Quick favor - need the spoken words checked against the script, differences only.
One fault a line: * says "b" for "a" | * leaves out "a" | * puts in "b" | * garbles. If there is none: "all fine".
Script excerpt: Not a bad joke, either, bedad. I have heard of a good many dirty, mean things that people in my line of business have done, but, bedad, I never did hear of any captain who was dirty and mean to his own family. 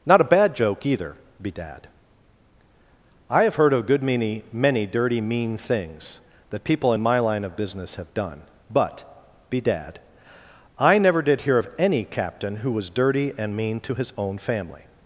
* puts in "many"